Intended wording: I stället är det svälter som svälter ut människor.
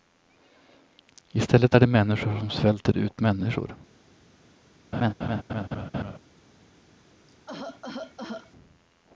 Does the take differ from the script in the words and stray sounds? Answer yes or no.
yes